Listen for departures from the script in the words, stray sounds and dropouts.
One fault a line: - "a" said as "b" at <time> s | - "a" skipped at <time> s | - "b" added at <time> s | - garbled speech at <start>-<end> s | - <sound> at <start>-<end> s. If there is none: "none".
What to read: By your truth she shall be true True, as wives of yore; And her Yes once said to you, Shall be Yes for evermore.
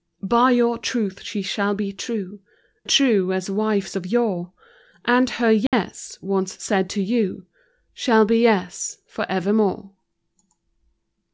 - dropout at 5.7-5.7 s